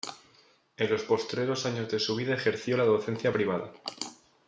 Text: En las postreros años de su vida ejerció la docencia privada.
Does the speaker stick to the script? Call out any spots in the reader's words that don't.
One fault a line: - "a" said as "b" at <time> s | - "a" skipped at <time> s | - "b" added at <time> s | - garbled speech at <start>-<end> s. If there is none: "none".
- "las" said as "los" at 0.9 s